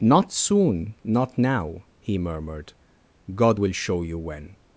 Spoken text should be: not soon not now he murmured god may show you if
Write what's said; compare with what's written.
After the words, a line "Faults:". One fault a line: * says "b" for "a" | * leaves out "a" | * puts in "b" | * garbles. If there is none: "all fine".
not soon not now he murmured god will show you when
Faults:
* says "will" for "may"
* says "when" for "if"